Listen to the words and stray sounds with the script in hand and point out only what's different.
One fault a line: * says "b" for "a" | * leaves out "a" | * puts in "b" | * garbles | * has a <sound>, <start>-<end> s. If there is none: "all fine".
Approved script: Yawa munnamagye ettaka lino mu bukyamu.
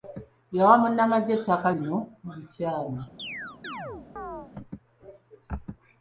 * has a chirp, 3.2-4.5 s